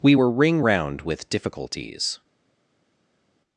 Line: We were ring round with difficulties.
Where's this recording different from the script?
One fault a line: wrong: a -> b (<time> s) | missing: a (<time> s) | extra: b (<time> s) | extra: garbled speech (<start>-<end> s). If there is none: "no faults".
no faults